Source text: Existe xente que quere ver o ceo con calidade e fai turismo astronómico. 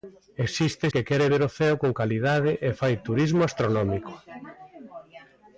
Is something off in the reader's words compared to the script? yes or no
yes